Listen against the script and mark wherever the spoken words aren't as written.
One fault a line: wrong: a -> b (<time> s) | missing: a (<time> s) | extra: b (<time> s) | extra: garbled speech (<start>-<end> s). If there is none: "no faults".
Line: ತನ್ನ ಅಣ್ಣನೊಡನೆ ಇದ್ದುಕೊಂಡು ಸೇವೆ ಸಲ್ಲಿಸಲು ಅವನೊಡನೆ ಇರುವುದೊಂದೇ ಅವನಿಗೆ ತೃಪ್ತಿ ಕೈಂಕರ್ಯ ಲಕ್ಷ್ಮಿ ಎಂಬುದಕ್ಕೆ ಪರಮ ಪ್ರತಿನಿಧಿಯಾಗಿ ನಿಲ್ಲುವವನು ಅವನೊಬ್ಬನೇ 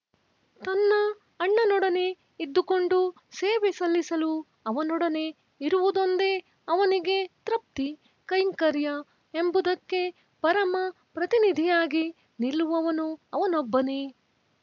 missing: ಲಕ್ಷ್ಮಿ (8.9 s)